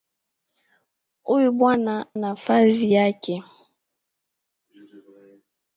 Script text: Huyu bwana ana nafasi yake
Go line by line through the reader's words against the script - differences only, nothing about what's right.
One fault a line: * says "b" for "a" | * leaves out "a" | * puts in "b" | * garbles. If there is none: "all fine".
* leaves out "ana"